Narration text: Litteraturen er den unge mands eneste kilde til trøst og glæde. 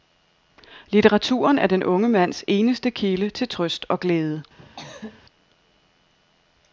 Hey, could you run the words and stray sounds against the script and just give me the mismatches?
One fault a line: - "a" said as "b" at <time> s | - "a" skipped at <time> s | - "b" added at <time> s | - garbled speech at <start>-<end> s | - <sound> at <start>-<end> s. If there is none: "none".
- cough at 4.6-5.2 s